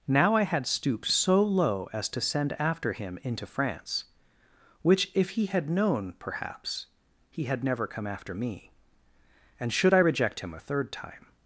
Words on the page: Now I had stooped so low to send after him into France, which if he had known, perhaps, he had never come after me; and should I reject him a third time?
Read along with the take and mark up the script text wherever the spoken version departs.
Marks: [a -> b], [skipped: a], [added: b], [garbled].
Now I had stooped so low [added: as] to send after him into France, which if he had known, perhaps, he had never come after me; and should I reject him a third time?